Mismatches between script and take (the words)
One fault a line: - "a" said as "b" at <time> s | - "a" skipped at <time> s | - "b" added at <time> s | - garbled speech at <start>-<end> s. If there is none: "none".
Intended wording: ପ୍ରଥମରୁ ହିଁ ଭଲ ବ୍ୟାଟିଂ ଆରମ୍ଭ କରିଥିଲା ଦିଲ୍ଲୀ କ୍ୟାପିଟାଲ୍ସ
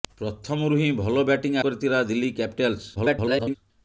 - "ଆରମ୍ଭ" skipped at 1.6 s
- garbled speech at 3.0-3.6 s